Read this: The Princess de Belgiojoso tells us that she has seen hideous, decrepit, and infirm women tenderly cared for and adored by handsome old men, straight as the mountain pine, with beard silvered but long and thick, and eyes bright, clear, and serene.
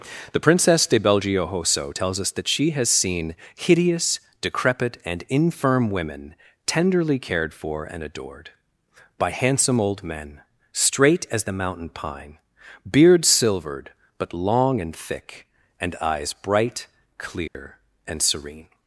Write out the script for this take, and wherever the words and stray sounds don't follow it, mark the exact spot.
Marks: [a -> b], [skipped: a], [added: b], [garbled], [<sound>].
The Princess de Belgiojoso tells us that she has seen hideous, decrepit, and infirm women tenderly cared for and adored by handsome old men, straight as the mountain pine, [skipped: with] beard silvered but long and thick, and eyes bright, clear, [dropout] and serene.